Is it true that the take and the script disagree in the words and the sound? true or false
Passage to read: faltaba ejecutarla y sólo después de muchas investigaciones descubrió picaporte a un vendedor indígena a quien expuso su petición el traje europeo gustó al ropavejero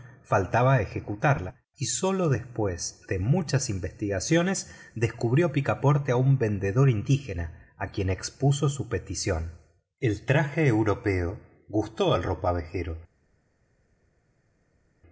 false